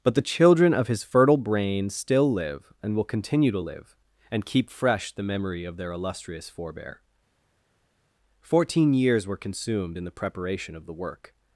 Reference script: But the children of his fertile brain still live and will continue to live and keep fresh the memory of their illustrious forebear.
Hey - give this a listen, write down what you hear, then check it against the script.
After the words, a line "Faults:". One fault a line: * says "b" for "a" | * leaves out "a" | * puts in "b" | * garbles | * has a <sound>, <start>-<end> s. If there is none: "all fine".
But the children of his fertile brain still live and will continue to live and keep fresh the memory of their illustrious forebear. Fourteen years were consumed in the preparation of the work
Faults:
* puts in "Fourteen years were consumed in the preparation of the work"